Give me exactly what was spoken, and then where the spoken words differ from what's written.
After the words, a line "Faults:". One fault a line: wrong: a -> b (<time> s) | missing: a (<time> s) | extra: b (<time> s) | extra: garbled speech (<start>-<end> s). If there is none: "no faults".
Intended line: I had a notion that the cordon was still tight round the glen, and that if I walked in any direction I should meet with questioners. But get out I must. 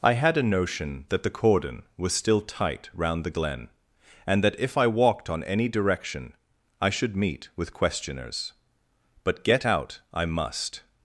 I had a notion that the cordon was still tight round the glen, and that if I walked on any direction I should meet with questioners. But get out I must.
Faults:
wrong: in -> on (5.3 s)